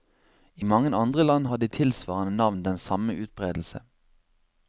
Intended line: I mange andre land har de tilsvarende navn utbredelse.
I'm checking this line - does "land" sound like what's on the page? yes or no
yes